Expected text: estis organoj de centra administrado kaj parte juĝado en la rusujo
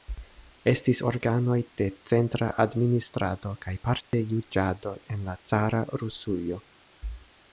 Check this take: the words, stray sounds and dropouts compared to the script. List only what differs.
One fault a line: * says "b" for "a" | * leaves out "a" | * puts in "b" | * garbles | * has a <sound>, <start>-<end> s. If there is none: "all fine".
* has a dropout, 4.0-4.1 s
* puts in "cara"